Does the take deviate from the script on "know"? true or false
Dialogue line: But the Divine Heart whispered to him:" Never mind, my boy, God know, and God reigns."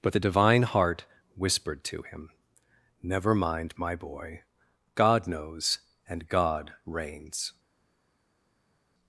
true